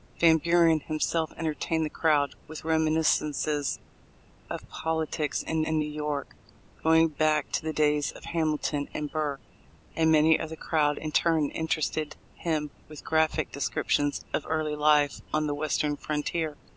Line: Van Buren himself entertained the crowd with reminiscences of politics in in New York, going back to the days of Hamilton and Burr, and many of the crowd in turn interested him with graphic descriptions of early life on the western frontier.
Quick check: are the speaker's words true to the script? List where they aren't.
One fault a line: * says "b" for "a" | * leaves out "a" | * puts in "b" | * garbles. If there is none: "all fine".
all fine